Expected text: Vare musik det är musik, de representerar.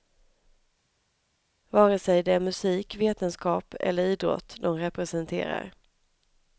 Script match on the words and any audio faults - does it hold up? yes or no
no